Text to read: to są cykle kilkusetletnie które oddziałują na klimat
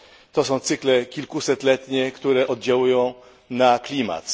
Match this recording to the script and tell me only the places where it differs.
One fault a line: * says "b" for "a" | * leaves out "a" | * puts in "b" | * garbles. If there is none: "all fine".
all fine